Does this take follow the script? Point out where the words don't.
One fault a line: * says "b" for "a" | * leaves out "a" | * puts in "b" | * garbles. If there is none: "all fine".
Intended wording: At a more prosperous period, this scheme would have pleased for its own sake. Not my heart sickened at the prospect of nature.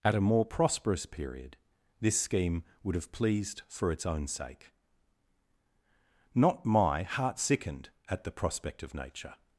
all fine